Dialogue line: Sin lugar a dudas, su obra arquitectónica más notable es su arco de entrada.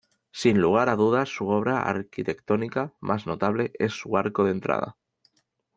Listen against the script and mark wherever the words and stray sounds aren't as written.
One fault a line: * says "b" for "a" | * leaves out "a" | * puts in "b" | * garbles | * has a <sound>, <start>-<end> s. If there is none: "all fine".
all fine